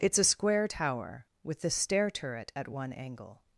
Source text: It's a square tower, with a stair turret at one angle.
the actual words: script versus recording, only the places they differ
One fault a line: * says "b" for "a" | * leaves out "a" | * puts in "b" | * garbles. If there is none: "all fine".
* says "the" for "a"